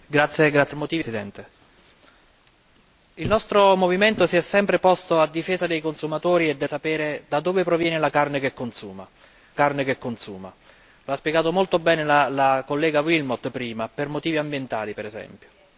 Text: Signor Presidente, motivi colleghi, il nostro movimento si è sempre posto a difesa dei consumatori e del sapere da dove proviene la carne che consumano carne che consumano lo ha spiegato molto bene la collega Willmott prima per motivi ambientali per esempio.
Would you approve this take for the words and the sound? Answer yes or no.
yes